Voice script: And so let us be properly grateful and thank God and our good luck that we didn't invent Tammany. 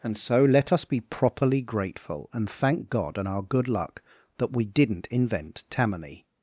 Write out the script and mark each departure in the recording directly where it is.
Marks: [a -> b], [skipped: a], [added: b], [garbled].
And so let us be properly grateful and thank God and our good luck that we didn't invent Tammany.